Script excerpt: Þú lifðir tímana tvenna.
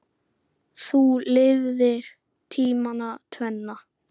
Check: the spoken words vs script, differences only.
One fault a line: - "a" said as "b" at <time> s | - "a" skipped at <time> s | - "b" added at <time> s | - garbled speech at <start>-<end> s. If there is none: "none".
none